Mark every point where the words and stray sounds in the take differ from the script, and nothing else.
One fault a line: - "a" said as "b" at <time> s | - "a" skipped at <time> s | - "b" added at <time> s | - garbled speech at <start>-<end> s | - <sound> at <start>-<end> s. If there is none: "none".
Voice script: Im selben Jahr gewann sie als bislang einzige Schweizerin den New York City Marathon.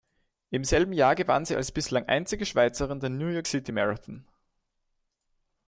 none